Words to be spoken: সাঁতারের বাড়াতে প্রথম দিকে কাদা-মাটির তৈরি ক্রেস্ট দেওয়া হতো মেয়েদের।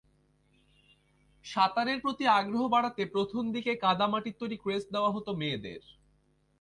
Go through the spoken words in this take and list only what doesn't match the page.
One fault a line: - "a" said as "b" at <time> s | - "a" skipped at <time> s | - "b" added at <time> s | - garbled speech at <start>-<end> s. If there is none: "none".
- "প্রতি আগ্রহ" added at 2.0 s